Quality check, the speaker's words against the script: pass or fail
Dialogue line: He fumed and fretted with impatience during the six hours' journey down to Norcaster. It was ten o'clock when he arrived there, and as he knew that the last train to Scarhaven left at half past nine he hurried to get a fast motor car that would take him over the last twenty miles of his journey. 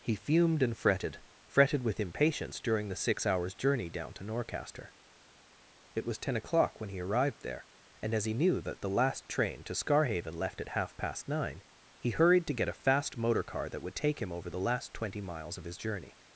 fail